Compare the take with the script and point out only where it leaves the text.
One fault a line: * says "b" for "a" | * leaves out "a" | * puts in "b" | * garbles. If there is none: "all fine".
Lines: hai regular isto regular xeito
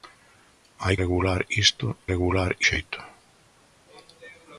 all fine